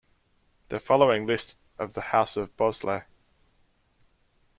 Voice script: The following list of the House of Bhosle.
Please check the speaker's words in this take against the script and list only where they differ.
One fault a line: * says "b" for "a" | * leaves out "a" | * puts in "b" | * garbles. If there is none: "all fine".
all fine